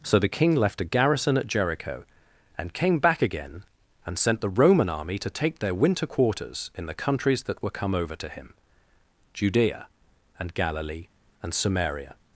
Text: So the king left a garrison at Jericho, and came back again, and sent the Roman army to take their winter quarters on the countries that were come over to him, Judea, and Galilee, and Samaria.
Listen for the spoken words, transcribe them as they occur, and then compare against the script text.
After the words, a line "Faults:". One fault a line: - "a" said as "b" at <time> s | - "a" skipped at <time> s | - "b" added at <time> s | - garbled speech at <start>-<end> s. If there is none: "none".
So the king left a garrison at Jericho, and came back again, and sent the Roman army to take their winter quarters in the countries that were come over to him, Judea, and Galilee, and Samaria.
Faults:
- "on" said as "in" at 6.8 s